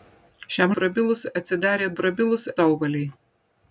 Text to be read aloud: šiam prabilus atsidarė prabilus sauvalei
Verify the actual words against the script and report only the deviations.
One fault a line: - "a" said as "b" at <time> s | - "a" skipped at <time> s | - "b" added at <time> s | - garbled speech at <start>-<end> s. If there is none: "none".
none